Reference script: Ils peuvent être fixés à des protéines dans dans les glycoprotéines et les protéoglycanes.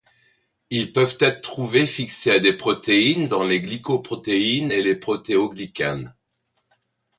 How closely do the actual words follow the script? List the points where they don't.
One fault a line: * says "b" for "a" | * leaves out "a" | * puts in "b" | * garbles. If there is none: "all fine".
* puts in "trouvés"
* leaves out "dans"